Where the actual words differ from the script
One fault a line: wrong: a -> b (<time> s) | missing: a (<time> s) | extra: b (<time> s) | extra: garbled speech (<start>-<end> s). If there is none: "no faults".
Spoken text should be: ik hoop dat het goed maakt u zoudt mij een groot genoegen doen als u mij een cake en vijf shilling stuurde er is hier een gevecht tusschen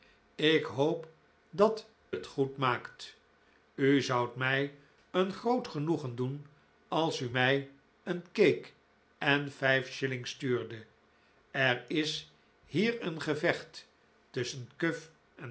no faults